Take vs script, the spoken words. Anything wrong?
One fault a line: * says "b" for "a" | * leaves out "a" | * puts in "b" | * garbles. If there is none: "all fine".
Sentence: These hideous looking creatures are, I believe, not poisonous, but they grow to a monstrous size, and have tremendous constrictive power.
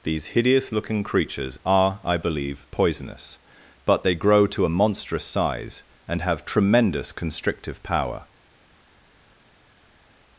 * leaves out "not"